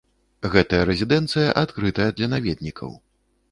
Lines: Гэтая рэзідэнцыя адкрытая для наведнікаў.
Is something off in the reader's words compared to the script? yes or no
no